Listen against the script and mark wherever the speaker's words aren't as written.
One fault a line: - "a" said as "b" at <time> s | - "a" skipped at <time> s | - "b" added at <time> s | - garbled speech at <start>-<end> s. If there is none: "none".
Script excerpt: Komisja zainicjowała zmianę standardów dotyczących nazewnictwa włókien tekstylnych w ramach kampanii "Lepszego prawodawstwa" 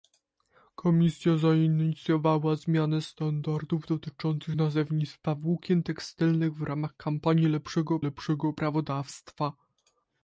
- "lepszego" added at 8.0 s